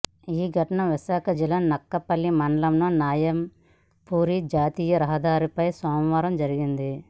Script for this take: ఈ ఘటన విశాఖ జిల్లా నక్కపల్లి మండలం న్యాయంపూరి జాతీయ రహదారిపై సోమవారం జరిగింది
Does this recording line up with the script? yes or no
yes